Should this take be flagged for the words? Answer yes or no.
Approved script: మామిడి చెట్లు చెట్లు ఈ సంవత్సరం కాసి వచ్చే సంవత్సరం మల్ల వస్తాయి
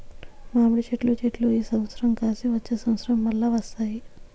no